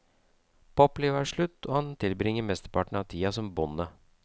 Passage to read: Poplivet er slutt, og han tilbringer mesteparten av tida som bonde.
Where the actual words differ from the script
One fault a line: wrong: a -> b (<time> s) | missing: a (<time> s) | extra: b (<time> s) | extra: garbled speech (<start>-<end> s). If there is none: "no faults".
no faults